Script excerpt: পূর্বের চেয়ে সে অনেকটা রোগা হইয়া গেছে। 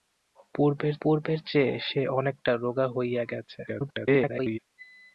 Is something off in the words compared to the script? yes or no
yes